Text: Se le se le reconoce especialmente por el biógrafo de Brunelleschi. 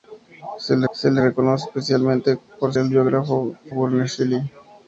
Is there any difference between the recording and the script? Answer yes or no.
no